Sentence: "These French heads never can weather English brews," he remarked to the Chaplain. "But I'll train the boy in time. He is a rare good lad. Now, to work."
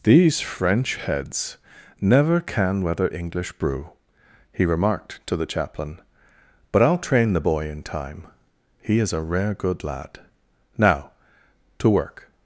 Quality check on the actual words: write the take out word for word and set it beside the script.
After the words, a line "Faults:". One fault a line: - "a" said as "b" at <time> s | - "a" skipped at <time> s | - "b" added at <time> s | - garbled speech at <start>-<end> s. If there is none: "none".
"These French heads never can weather English brew," he remarked to the Chaplain. "But I'll train the boy in time. He is a rare good lad. Now, to work."
Faults:
- "brews" said as "brew" at 3.5 s